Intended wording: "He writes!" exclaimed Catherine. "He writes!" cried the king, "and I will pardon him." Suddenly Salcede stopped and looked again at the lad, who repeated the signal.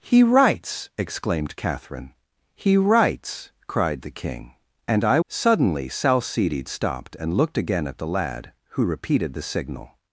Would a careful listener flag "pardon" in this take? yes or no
yes